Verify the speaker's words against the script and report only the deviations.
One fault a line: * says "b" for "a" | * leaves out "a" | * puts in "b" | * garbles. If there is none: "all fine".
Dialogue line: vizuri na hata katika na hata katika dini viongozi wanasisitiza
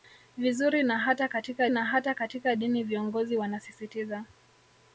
all fine